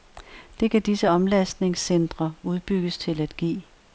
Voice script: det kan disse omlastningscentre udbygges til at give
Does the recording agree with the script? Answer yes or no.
yes